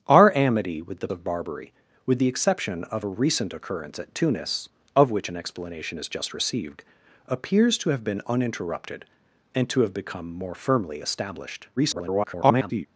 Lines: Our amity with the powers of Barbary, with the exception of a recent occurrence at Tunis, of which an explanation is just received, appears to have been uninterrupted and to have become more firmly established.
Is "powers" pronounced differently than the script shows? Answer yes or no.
yes